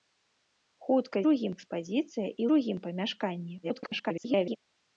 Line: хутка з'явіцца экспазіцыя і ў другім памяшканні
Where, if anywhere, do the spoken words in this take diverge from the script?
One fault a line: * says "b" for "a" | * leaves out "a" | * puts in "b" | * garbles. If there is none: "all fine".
* says "другім" for "з'явіцца"
* leaves out "ў"
* garbles